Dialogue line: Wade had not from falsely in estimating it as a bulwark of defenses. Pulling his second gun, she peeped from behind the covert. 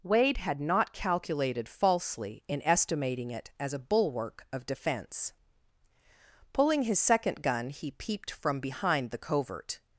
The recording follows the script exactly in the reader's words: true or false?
false